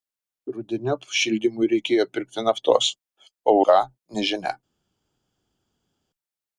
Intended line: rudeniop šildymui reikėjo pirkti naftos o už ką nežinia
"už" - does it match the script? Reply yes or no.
no